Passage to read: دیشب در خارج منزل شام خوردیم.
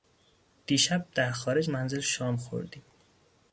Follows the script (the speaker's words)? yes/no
yes